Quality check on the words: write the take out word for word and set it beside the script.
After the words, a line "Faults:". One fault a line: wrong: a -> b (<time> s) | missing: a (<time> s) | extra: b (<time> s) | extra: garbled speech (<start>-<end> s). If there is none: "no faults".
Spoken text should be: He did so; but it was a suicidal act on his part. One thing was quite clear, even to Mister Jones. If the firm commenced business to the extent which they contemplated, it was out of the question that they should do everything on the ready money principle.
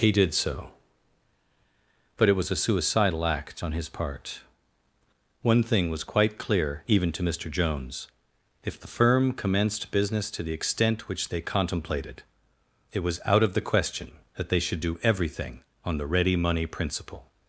He did so; but it was a suicidal act on his part. One thing was quite clear, even to Mister Jones. If the firm commenced business to the extent which they contemplated, it was out of the question that they should do everything on the ready money principle.
Faults:
no faults